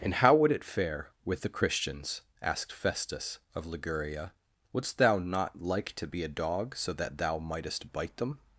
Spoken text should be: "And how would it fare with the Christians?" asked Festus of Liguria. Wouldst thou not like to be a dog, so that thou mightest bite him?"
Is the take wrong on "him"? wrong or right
wrong